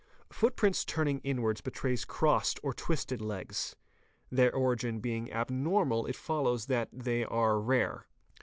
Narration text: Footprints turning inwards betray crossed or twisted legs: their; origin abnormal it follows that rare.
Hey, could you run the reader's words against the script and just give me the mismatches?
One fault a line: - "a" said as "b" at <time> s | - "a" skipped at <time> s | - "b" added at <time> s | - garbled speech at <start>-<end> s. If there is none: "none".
- "being" added at 5.0 s
- "they are" added at 6.9 s